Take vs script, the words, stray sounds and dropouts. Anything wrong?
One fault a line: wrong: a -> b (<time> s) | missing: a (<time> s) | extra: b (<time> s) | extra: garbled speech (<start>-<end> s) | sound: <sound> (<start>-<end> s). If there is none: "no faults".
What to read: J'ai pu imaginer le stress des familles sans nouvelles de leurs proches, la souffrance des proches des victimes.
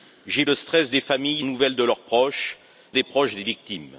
missing: pu imaginer (0.5 s)
missing: sans (1.4 s)
missing: la souffrance (2.6 s)